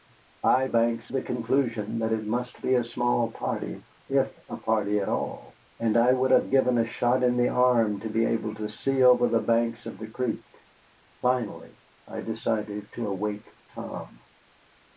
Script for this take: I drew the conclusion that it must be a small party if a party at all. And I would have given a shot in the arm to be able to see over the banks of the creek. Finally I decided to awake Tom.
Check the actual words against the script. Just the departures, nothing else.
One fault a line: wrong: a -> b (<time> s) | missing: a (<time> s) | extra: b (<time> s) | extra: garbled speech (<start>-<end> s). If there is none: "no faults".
wrong: drew -> banks (0.7 s)